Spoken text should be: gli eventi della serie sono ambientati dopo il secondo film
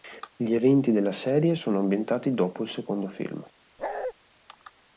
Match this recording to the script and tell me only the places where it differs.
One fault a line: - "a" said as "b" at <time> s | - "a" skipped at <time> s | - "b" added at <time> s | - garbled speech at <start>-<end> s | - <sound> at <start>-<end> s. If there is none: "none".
- bark at 3.8-4.1 s